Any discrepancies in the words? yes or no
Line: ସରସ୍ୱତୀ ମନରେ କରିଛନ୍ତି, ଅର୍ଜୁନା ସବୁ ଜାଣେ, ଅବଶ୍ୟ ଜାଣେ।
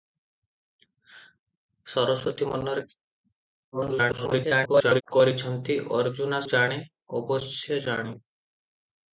yes